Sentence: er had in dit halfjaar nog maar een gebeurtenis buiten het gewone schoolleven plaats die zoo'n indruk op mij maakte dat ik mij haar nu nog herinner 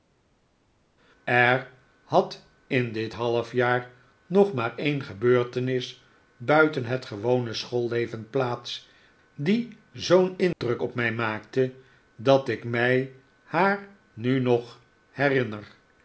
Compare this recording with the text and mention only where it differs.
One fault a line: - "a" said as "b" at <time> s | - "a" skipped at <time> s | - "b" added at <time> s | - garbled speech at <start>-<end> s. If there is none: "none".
none